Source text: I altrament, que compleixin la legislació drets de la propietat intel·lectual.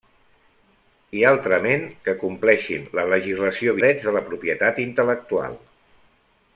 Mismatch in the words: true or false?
false